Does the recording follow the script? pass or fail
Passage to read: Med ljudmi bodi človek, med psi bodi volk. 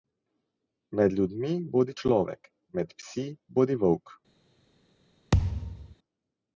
pass